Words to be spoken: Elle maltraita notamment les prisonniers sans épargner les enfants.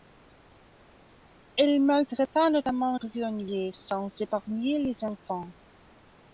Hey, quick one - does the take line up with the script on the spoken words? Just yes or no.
no